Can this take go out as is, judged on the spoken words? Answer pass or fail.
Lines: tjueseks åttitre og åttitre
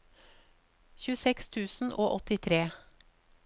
fail